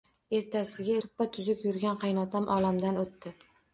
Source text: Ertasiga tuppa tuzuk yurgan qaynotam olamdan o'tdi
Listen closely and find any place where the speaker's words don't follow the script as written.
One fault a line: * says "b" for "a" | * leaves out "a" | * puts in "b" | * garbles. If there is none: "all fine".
all fine